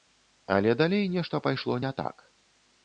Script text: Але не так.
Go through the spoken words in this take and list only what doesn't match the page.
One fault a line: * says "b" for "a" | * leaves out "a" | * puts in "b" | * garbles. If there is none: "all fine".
* puts in "далей нешта пайшло"